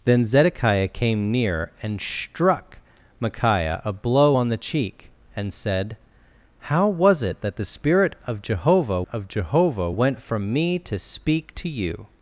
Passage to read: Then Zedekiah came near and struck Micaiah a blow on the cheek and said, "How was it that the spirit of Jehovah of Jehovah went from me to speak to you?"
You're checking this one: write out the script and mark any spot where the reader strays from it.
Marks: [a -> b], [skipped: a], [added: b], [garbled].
Then Zedekiah came near and struck Micaiah a blow on the cheek and said, "How was it that the spirit of Jehovah of Jehovah went from me to speak to you?"